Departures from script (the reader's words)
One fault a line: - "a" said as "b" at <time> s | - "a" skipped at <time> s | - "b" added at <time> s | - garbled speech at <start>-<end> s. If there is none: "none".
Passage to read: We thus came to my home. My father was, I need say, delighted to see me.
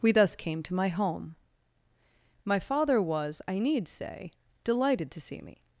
none